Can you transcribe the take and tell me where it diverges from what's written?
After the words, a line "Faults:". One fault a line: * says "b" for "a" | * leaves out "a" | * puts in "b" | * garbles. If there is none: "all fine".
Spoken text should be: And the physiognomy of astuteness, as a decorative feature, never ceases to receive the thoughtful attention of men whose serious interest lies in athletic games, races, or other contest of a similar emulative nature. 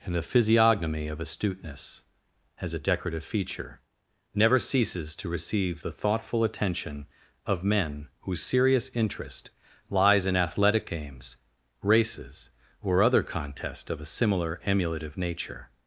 And the physiognomy of astuteness, as a decorative feature, never ceases to receive the thoughtful attention of men whose serious interest lies in athletic games, races, or other contest of a similar emulative nature.
Faults:
all fine